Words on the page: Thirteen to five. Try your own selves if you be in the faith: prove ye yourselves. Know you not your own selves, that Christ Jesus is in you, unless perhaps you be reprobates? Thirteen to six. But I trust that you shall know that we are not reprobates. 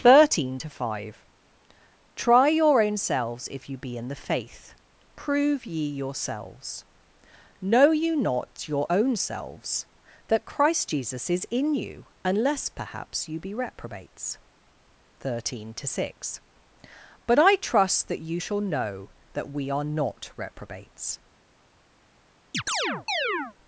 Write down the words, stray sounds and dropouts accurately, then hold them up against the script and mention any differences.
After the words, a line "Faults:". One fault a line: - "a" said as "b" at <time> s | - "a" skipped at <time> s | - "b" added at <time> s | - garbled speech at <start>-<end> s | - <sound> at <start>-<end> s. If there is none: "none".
Thirteen to five. Try your own selves if you be in the faith: prove ye yourselves. Know you not your own selves, that Christ Jesus is in you, unless perhaps you be reprobates? Thirteen to six. But I trust that you shall know that we are not reprobates.
Faults:
- chirp at 22.5-23.5 s